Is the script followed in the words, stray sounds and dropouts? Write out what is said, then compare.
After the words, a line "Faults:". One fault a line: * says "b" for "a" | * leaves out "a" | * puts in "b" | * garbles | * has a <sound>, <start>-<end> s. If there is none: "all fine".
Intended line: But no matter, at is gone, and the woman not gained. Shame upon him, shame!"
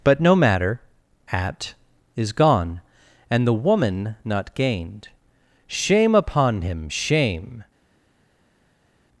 But no matter, at is gone, and the woman not gained. Shame upon him, shame!"
Faults:
all fine